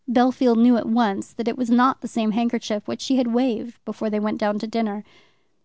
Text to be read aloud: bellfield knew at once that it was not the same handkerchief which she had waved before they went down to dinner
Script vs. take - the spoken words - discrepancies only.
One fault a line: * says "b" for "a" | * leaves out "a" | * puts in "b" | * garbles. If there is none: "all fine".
all fine